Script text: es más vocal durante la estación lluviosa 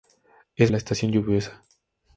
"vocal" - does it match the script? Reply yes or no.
no